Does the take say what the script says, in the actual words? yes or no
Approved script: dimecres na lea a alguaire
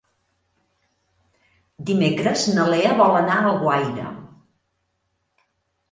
no